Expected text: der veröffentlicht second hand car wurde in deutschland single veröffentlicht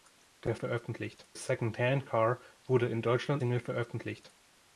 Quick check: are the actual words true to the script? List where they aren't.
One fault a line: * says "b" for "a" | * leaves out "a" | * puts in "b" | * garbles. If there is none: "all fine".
all fine